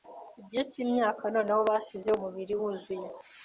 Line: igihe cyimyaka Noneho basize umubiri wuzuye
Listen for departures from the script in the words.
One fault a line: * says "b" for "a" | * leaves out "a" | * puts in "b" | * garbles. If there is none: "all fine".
all fine